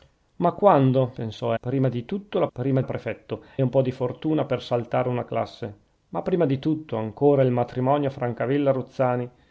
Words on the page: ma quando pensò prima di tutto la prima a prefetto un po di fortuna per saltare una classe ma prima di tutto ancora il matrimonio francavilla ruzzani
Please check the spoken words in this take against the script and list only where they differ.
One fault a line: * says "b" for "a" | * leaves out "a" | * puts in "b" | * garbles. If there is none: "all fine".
all fine